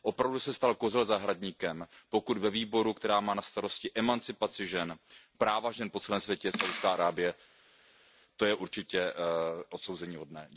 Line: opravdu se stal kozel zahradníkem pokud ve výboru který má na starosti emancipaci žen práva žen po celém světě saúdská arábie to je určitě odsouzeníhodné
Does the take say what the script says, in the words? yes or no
yes